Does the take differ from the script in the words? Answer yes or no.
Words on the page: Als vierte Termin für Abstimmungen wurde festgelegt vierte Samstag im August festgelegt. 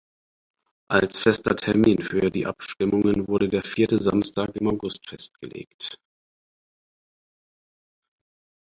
yes